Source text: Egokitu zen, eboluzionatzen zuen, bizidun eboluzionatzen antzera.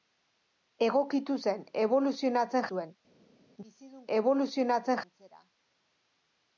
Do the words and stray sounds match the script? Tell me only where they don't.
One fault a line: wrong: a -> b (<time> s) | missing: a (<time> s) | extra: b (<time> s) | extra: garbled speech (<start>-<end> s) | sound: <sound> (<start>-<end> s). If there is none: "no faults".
no faults